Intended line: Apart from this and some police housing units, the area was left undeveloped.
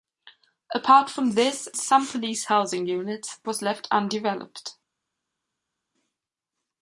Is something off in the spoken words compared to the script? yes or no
yes